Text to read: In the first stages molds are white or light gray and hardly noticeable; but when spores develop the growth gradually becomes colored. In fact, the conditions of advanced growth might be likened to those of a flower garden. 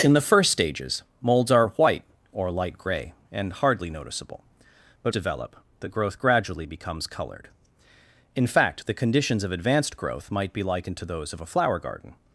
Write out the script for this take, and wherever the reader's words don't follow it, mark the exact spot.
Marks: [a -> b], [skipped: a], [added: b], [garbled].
In the first stages molds are white or light gray and hardly noticeable; but [skipped: when spores] develop the growth gradually becomes colored. In fact, the conditions of advanced growth might be likened to those of a flower garden.